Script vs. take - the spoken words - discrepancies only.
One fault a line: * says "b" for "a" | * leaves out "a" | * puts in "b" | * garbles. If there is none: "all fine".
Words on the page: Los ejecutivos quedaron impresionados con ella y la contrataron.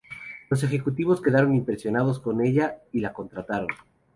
all fine